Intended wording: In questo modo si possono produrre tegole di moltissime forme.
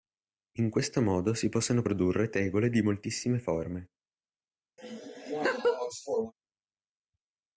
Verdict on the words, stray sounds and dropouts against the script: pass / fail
fail